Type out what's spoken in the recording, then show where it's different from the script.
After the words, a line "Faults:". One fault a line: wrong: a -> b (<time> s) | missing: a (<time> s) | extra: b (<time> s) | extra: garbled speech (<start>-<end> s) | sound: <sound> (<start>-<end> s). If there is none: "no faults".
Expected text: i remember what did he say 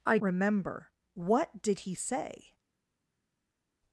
i remember what did he say
Faults:
no faults